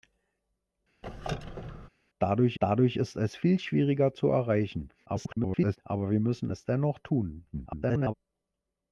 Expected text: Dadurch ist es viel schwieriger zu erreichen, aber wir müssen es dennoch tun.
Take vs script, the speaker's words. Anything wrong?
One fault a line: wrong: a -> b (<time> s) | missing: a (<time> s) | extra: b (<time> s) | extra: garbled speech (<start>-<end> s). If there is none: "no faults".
extra: dadurch (2.6 s)
extra: garbled speech (5.1-5.8 s)
extra: garbled speech (7.5-8.1 s)